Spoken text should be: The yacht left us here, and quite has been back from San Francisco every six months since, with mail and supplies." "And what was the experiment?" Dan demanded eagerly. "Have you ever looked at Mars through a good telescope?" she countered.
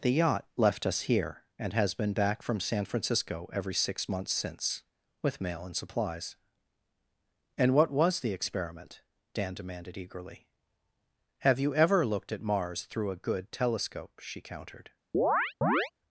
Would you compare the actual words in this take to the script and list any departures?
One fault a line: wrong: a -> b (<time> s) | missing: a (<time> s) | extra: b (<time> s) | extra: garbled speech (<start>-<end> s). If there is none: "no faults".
missing: quite (1.7 s)